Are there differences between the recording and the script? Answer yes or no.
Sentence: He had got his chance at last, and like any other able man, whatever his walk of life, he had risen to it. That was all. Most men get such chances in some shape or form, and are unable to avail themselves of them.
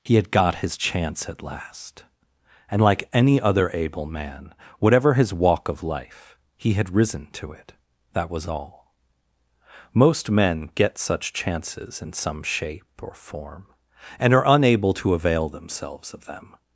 no